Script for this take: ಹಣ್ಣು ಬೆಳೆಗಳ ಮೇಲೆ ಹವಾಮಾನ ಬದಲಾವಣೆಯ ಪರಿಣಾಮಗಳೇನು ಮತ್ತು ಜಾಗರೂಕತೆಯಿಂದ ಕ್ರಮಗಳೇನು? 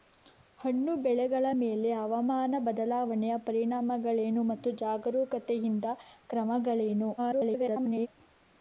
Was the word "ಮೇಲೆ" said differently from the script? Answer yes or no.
no